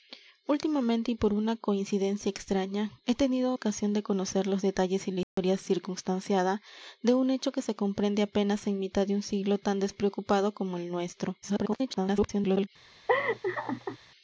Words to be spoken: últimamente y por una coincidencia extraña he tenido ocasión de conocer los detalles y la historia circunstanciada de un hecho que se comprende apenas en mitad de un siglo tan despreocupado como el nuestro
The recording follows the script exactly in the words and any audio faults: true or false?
false